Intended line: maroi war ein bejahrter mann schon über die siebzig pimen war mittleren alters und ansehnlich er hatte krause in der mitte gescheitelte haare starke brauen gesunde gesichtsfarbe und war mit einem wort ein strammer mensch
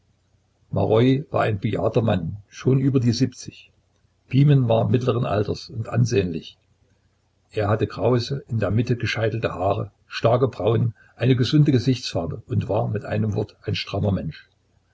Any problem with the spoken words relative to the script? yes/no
yes